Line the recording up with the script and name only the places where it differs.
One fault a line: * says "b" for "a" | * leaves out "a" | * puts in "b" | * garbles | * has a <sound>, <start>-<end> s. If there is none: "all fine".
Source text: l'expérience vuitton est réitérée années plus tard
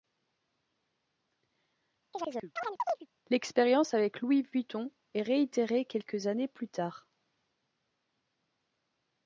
* has a chirp, 2.1-3.1 s
* puts in "avec louis"
* puts in "quelques"